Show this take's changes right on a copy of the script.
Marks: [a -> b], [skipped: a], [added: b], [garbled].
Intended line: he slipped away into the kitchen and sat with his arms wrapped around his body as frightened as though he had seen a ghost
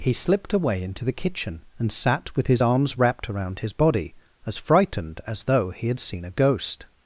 he slipped away into the kitchen and sat with his arms wrapped around his body as frightened as though he had seen a ghost